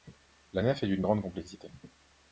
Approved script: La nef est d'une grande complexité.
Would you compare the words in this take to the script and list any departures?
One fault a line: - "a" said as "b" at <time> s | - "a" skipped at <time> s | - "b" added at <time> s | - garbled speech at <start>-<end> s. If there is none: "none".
none